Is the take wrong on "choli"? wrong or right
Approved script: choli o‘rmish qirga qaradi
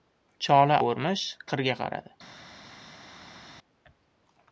right